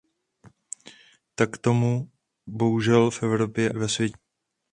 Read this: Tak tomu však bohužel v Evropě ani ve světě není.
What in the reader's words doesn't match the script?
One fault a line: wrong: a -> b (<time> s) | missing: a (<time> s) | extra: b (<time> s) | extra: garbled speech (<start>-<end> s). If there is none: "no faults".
missing: však (2.1 s)
missing: ani (3.7 s)